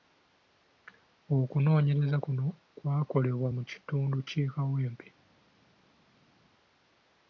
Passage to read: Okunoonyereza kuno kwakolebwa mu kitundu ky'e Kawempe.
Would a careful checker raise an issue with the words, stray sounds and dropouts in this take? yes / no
no